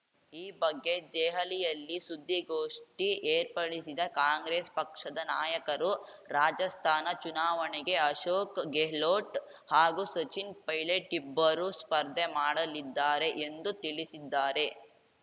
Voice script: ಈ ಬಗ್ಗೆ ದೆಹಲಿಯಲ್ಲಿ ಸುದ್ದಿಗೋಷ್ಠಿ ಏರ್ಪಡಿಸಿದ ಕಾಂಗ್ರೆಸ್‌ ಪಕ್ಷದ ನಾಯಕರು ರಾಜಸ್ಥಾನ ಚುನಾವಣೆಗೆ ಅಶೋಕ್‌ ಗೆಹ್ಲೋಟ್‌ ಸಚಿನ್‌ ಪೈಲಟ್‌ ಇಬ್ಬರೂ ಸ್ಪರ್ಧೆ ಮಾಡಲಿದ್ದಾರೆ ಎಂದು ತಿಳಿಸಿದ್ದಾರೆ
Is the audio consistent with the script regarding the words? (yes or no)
no